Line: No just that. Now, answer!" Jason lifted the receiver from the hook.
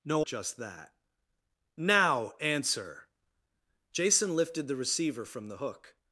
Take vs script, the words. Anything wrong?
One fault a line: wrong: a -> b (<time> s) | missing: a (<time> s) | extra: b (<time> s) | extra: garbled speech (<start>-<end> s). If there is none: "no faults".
no faults